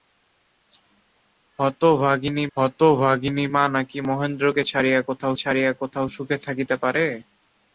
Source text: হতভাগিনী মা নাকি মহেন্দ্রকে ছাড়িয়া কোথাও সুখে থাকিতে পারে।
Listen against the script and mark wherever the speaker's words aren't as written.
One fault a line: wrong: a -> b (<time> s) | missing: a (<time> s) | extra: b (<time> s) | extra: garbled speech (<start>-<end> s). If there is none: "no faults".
extra: হতভাগিনী (2.6 s)
extra: ছাড়িয়া কোথাও (5.3 s)